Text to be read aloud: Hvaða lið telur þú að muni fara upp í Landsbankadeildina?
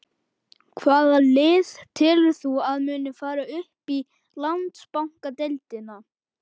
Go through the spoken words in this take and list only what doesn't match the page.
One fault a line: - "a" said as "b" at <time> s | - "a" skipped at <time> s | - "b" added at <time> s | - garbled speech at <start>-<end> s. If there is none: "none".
none